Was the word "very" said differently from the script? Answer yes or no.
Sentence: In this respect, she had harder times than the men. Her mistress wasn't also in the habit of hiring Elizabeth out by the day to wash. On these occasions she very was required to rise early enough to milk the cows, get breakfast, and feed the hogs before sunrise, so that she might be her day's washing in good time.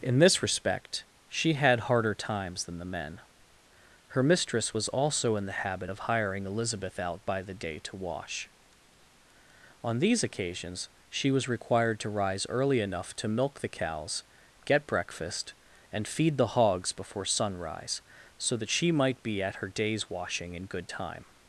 yes